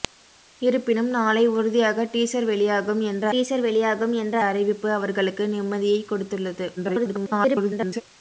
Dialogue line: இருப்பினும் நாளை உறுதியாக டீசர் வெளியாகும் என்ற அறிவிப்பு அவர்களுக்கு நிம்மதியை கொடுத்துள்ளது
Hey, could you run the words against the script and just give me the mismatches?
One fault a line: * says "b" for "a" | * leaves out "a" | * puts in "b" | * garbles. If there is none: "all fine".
* puts in "டீசர் வெளியாகும் என்ற"
* garbles